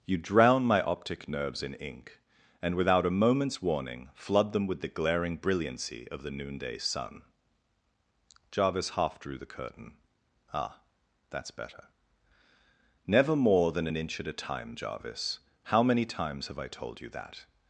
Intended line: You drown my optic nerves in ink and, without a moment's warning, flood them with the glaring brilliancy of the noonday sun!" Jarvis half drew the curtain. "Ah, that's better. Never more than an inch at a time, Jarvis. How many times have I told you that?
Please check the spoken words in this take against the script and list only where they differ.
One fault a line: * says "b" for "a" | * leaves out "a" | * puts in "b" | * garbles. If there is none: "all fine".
all fine